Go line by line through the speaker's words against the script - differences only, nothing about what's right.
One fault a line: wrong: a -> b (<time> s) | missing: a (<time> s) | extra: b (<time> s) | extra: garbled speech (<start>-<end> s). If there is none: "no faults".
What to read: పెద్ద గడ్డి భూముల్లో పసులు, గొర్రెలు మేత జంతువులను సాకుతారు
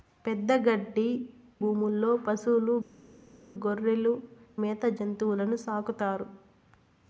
no faults